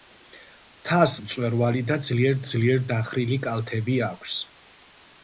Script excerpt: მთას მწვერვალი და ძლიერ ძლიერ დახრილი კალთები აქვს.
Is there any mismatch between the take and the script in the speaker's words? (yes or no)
no